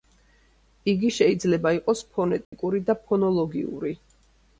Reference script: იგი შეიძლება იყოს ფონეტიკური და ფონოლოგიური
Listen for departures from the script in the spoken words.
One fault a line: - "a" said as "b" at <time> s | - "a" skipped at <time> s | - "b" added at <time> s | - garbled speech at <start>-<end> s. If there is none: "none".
none